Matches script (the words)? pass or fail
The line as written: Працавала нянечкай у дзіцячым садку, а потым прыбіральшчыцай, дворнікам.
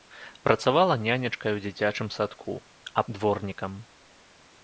fail